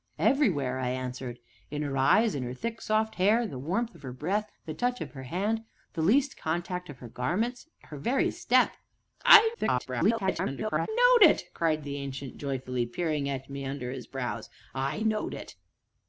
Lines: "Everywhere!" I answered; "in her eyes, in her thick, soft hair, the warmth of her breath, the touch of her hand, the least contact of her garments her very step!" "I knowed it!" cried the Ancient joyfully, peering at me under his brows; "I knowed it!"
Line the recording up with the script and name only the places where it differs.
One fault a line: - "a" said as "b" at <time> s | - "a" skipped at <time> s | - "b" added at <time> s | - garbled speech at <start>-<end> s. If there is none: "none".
- garbled speech at 9.5-10.9 s